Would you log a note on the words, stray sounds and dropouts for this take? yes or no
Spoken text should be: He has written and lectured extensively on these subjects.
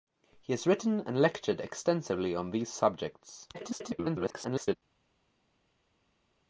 yes